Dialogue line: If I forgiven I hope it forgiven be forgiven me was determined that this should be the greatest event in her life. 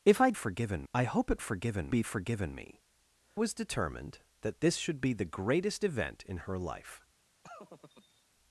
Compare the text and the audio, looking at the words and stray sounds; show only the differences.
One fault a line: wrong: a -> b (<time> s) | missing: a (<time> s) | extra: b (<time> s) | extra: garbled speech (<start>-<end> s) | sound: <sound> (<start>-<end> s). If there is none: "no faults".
sound: laugh (7.4-8.2 s)